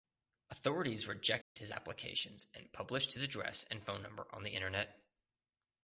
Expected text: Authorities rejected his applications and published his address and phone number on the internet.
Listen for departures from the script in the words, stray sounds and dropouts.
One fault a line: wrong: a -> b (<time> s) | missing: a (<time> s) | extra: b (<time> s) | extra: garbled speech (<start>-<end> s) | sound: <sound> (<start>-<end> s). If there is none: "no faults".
sound: dropout (1.4-1.6 s)